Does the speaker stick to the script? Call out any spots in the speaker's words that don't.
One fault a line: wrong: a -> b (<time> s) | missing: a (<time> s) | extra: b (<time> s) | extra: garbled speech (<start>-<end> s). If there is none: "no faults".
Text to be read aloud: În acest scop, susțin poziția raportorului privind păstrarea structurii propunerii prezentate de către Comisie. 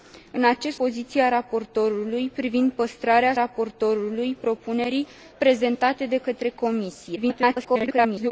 missing: scop susțin (0.8 s)
wrong: structurii -> raportorului (3.3 s)
extra: garbled speech (7.2-8.3 s)